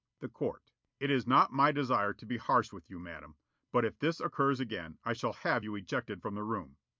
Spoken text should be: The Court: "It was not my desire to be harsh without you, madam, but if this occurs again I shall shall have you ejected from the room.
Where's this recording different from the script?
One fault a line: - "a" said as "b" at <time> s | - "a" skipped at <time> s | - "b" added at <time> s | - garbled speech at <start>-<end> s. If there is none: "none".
- "was" said as "is" at 1.1 s
- "without" said as "with" at 2.7 s
- "shall" skipped at 5.3 s